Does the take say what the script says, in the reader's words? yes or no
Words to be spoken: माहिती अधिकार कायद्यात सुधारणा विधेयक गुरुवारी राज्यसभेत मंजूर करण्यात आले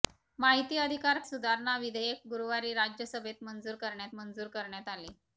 no